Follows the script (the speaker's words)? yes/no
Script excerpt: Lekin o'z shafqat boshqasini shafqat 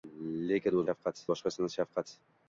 yes